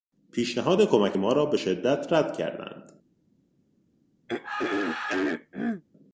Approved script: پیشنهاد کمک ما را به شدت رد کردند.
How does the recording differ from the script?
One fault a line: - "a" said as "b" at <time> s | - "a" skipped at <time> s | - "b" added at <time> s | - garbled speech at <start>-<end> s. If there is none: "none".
none